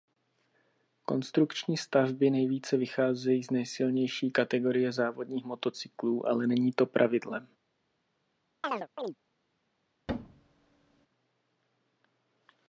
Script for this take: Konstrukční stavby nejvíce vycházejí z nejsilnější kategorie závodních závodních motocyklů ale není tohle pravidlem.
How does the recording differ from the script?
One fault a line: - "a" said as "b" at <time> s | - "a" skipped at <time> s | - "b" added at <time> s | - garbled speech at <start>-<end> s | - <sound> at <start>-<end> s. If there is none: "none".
- "závodních" skipped at 5.4 s
- "tohle" said as "to" at 6.7 s
- chirp at 8.6-9.1 s
- thud at 10.1-11.1 s